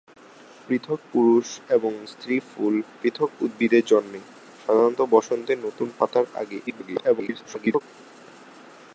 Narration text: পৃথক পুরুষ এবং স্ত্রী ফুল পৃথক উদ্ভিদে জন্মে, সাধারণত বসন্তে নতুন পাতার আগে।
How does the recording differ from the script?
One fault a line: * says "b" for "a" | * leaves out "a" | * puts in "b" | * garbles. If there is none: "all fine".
* garbles